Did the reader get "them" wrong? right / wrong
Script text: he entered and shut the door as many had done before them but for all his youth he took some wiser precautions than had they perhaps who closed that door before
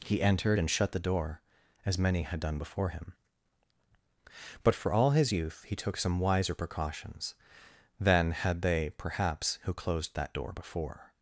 wrong